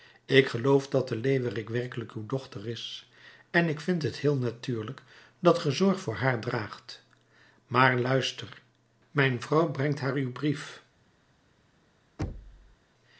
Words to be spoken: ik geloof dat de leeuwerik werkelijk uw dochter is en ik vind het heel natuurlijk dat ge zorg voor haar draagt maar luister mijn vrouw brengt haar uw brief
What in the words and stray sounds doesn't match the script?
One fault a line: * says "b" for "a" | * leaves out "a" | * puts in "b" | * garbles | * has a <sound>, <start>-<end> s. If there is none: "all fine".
* has a thud, 12.2-12.8 s